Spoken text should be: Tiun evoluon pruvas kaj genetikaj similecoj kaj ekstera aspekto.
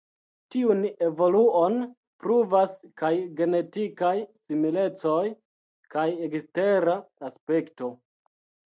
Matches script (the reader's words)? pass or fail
pass